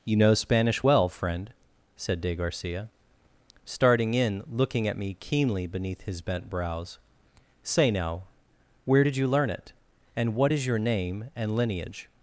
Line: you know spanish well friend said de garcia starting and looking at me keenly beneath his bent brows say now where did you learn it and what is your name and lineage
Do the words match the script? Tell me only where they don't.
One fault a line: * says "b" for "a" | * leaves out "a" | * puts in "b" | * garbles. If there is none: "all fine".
* says "in" for "and"